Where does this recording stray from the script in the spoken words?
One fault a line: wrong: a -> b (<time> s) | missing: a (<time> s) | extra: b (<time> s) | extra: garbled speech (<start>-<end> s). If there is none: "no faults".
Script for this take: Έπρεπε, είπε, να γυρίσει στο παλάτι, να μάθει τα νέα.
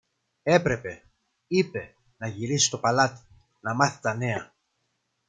no faults